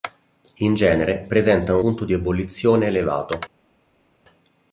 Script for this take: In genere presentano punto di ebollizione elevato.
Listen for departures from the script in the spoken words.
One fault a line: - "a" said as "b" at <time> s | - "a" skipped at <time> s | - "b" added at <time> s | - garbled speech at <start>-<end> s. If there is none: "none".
none